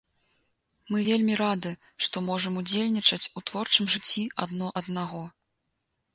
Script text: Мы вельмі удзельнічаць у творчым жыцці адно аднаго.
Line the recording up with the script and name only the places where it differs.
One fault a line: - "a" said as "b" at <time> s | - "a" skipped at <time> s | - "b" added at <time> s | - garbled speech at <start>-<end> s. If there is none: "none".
- "рады што можам" added at 1.4 s